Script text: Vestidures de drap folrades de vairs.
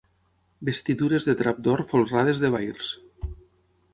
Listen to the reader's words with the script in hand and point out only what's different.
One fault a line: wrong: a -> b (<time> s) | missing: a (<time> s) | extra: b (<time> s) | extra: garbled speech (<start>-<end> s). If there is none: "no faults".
extra: d'or (1.7 s)